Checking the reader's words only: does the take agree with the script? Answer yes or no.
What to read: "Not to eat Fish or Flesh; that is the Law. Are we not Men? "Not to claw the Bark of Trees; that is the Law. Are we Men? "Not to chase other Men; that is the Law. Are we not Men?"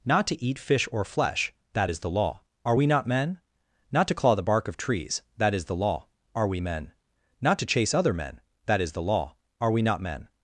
yes